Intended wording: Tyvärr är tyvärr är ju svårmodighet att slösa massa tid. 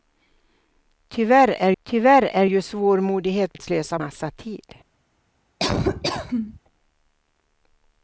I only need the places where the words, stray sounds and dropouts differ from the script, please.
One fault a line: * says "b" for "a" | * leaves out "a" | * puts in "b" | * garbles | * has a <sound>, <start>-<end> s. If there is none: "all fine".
* has a laugh, 5.6-6.6 s